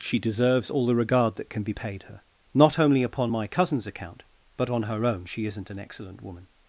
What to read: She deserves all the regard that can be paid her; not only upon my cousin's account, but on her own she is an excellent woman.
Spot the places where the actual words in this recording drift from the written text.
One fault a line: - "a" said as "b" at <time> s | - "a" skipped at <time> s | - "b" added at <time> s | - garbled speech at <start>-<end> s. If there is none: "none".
- "is" said as "isn't" at 5.4 s